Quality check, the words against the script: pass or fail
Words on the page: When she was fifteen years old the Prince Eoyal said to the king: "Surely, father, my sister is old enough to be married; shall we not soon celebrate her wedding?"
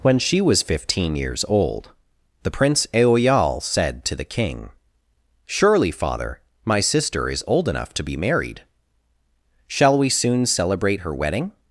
fail